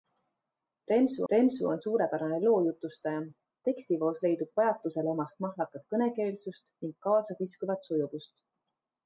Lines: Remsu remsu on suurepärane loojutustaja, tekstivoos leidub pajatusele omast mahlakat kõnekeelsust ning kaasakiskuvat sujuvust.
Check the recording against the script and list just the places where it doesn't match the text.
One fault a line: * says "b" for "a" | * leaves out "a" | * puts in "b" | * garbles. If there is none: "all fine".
all fine